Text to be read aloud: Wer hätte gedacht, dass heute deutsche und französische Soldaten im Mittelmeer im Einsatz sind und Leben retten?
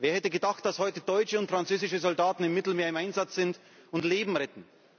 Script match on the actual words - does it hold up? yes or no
yes